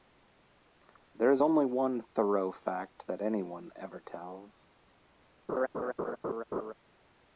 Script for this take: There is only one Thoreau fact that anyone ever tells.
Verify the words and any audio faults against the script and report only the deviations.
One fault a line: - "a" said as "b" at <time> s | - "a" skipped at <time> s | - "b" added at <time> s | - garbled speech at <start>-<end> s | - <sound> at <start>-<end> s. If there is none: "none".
- laugh at 5.5-6.7 s